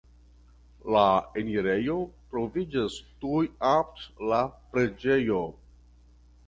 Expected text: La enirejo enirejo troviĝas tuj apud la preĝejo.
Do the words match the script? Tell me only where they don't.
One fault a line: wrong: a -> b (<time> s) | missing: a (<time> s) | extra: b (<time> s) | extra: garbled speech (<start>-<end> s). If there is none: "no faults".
missing: enirejo (2.0 s)